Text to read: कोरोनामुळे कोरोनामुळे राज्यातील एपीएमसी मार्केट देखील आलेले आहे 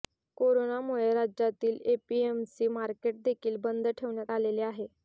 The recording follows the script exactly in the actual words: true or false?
false